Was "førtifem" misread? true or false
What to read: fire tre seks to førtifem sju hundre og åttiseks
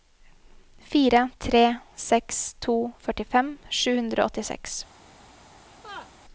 false